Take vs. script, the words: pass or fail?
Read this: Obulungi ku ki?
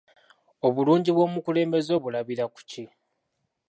fail